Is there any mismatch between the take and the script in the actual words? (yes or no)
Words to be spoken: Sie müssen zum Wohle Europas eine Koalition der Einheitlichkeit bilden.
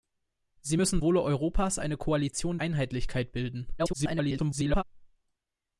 yes